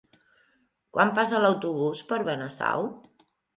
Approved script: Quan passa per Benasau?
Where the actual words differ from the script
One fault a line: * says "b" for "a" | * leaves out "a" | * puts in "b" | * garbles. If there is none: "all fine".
* puts in "l'autobús"